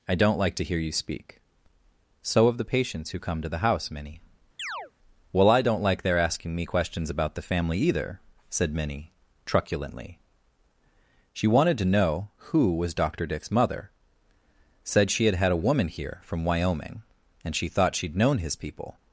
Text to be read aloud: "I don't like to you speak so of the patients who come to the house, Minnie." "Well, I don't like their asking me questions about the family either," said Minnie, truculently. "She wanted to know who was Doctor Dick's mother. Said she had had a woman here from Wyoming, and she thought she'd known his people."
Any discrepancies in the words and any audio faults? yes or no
yes